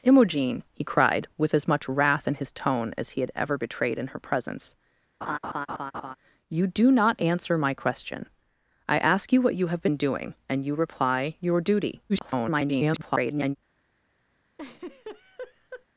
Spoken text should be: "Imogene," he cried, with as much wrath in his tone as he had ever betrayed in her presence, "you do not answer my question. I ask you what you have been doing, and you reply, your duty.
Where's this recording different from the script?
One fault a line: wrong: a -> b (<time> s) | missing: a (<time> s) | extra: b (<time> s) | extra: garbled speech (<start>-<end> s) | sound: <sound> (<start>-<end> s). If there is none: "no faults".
sound: laugh (5.2-6.2 s)
extra: garbled speech (12.1-13.6 s)
sound: laugh (14.5-15.9 s)